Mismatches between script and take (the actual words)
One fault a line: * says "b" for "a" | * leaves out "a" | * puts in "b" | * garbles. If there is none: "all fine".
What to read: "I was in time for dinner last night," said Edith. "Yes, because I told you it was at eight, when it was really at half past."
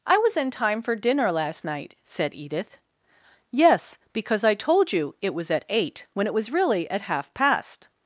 all fine